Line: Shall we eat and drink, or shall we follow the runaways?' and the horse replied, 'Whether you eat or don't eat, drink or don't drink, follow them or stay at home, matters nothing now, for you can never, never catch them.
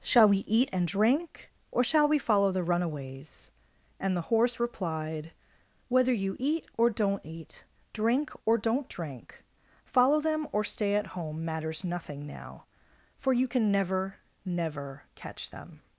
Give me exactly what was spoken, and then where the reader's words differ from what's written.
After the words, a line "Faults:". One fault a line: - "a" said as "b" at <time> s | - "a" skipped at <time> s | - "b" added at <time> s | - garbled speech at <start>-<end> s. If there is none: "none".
Shall we eat and drink, or shall we follow the runaways?' and the horse replied, 'Whether you eat or don't eat, drink or don't drink, follow them or stay at home, matters nothing now, for you can never, never catch them.
Faults:
none